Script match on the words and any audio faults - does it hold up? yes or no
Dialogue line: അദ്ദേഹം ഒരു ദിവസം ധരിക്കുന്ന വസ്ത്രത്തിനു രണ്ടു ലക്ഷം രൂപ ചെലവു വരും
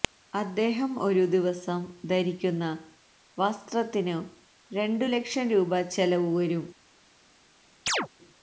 no